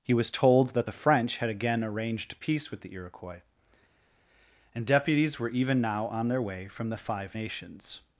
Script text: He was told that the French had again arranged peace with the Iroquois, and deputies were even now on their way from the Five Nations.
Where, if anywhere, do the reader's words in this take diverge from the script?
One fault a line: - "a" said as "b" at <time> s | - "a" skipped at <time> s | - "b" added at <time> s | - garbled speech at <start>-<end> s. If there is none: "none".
none